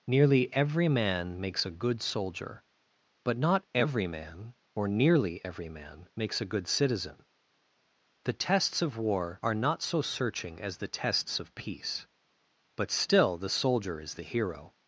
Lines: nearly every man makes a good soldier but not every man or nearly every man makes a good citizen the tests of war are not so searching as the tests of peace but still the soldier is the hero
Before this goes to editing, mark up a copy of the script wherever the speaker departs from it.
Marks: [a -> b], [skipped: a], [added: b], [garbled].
nearly every man makes a good soldier but not every man or nearly every man makes a good citizen the tests of war are not so searching as the tests of peace but still the soldier is the hero